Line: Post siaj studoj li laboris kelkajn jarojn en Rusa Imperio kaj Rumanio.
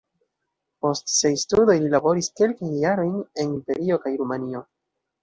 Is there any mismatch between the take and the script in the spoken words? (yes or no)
yes